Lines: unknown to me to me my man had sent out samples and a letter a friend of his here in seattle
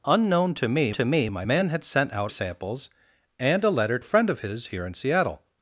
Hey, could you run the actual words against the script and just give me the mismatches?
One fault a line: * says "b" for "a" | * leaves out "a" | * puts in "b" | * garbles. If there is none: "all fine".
all fine